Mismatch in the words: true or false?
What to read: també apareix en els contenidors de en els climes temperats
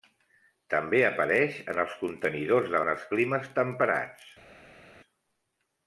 false